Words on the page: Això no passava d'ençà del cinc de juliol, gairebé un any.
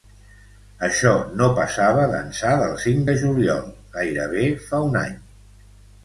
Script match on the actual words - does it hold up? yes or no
no